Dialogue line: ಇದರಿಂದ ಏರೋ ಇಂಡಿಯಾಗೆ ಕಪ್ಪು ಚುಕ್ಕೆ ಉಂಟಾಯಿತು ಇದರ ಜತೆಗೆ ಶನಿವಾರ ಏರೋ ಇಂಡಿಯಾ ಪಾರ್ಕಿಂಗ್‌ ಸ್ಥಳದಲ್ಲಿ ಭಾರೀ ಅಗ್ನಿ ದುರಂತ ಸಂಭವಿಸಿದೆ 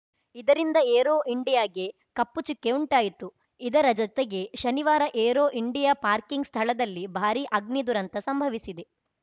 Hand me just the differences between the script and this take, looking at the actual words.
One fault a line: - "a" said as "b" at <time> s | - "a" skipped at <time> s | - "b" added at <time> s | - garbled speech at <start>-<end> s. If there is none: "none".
none